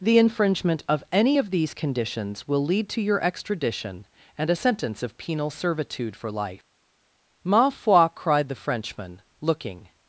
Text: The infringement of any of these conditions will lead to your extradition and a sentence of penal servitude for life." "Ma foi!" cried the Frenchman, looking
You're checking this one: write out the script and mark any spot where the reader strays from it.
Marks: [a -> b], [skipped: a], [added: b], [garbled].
The infringement of any of these conditions will lead to your extradition and a sentence of penal servitude for life." "Ma foi!" cried the Frenchman, looking